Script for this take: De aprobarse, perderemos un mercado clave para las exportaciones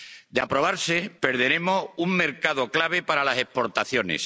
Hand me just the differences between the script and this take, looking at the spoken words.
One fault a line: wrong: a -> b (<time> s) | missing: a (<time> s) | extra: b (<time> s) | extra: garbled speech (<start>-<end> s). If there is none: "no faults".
no faults